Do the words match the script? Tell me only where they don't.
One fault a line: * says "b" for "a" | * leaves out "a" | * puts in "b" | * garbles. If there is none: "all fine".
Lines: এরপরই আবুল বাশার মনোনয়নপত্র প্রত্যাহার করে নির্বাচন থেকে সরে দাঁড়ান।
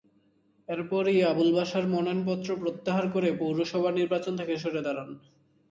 * puts in "পৌরসভা"